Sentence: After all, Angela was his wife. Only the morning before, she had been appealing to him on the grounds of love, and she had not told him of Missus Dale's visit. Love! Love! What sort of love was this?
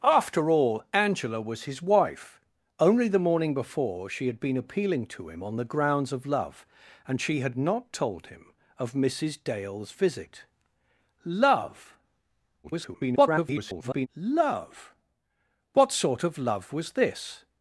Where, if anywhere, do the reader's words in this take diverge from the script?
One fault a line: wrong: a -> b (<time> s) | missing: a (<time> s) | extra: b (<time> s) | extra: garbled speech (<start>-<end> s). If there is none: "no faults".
extra: garbled speech (12.6-14.1 s)